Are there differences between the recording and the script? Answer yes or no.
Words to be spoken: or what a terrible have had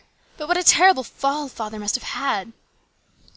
yes